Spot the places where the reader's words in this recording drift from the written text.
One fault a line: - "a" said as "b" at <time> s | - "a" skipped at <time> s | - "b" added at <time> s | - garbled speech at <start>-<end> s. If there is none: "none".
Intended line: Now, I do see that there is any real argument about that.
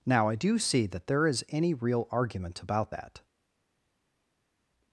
none